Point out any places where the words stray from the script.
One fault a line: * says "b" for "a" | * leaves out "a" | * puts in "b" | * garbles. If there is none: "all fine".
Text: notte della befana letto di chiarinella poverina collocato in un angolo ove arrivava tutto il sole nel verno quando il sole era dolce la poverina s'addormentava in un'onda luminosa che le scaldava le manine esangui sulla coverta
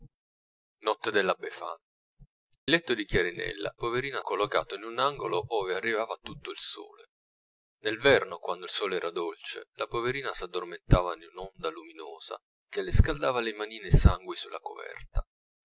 all fine